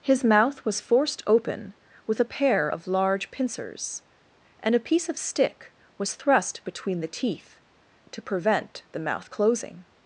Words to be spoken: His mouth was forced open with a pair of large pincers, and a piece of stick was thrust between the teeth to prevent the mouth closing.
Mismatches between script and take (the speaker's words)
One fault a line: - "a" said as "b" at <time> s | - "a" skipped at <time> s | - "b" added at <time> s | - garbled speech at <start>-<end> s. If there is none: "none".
none